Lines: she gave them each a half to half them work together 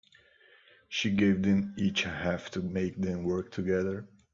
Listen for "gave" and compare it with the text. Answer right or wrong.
right